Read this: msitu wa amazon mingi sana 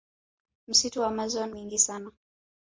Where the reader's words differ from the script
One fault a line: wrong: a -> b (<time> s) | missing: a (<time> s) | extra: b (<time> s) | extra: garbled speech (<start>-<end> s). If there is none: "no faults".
no faults